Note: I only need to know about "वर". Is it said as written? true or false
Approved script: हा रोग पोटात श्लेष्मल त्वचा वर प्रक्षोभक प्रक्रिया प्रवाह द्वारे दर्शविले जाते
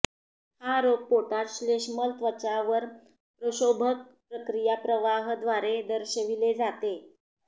true